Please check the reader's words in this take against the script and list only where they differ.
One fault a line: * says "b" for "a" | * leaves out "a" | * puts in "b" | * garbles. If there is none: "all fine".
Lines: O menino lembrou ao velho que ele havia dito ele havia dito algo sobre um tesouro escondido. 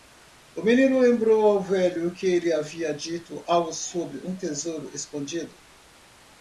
* leaves out "ele havia dito"